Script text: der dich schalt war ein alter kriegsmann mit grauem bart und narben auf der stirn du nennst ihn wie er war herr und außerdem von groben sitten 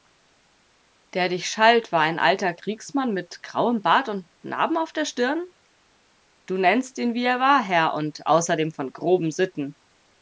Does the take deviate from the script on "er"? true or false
false